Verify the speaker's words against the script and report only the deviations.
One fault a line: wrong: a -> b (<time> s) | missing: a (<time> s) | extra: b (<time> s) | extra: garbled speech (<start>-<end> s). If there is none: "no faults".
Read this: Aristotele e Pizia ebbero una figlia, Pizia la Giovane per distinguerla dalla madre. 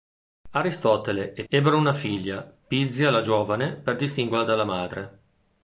missing: Pizia (1.4 s)